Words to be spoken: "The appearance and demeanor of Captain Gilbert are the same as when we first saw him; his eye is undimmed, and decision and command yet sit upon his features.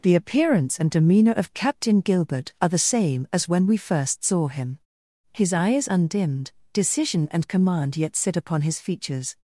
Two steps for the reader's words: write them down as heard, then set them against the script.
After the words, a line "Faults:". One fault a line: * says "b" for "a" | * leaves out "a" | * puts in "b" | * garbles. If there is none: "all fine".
"The appearance and demeanor of Captain Gilbert are the same as when we first saw him; his eye is undimmed, decision and command yet sit upon his features.
Faults:
* leaves out "and"